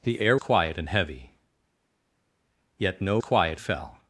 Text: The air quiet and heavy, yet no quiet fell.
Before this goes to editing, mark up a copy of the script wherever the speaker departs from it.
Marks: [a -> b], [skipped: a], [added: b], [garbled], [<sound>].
The air quiet and heavy, yet no quiet fell.